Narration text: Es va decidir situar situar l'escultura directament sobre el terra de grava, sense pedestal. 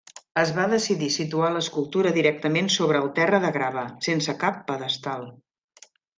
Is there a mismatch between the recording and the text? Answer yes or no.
yes